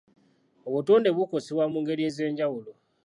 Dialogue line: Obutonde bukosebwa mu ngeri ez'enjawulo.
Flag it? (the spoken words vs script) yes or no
no